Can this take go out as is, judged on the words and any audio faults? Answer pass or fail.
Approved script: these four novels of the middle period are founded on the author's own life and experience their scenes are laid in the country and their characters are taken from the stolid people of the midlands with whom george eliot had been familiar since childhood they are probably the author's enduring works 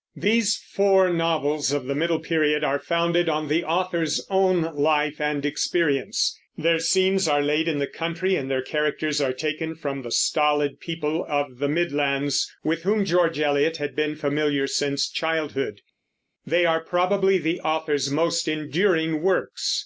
fail